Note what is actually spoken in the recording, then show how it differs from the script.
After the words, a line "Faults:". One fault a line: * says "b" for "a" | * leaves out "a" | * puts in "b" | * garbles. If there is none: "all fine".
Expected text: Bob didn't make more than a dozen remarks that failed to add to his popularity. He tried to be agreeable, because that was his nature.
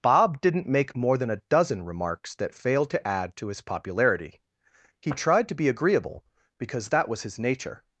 Bob didn't make more than a dozen remarks that failed to add to his popularity. He tried to be agreeable, because that was his nature.
Faults:
all fine